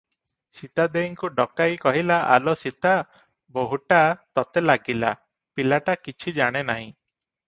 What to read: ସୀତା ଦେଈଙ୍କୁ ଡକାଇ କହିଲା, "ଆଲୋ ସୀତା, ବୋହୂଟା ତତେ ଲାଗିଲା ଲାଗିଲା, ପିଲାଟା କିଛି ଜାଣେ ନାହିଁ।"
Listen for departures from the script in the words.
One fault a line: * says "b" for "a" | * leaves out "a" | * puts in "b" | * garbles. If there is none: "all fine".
* leaves out "ଲାଗିଲା"